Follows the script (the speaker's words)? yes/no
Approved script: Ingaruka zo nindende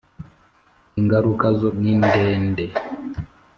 yes